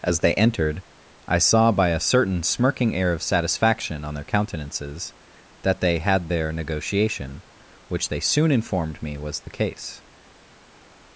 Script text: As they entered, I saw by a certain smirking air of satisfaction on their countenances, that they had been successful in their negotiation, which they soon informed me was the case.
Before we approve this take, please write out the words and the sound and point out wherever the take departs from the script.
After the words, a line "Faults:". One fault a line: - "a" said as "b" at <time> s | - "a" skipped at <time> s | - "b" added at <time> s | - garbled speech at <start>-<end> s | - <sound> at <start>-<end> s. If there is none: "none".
As they entered, I saw by a certain smirking air of satisfaction on their countenances, that they had their negotiation, which they soon informed me was the case.
Faults:
- "been successful in" skipped at 6.3 s